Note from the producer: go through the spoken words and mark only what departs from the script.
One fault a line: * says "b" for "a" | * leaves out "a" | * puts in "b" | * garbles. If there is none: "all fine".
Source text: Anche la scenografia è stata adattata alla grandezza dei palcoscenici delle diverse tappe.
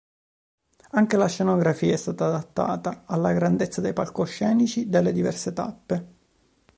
all fine